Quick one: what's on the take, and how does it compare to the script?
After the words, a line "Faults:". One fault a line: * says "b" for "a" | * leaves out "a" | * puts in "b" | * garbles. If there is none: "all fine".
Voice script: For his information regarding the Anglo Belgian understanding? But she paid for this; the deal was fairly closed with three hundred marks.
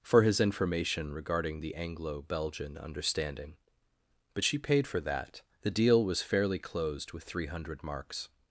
For his information regarding the Anglo Belgian understanding? But she paid for that; the deal was fairly closed with three hundred marks.
Faults:
* says "that" for "this"